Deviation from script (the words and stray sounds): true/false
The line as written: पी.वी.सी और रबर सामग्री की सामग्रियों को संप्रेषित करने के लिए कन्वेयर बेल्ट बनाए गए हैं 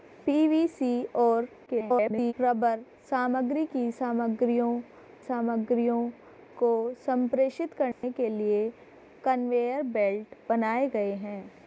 true